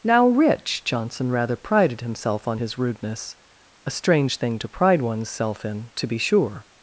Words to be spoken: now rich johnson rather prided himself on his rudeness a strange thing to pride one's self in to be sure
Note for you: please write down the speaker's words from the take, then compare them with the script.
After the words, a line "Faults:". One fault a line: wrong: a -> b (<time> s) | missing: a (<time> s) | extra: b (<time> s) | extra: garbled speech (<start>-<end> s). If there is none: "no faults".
now rich johnson rather prided himself on his rudeness a strange thing to pride one's self in to be sure
Faults:
no faults